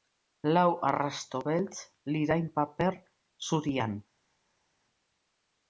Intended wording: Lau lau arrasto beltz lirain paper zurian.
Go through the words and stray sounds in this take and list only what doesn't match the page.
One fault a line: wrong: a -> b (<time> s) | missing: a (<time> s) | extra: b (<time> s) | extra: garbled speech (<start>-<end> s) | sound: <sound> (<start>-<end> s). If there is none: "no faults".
missing: lau (0.7 s)